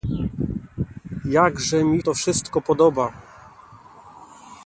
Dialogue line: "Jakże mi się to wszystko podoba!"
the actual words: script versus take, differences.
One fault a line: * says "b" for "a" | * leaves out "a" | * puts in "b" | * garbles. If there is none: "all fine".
* leaves out "się"